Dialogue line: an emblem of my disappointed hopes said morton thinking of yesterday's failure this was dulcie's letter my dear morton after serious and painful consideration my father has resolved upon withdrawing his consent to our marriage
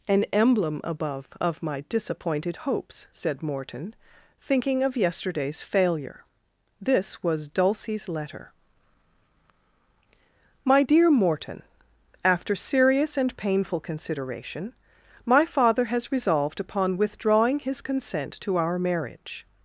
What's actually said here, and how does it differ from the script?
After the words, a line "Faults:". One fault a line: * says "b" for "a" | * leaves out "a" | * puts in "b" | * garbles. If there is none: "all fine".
an emblem above of my disappointed hopes said morton thinking of yesterday's failure this was dulcie's letter my dear morton after serious and painful consideration my father has resolved upon withdrawing his consent to our marriage
Faults:
* puts in "above"